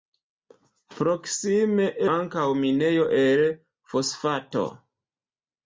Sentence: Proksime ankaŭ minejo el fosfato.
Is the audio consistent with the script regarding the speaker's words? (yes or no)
yes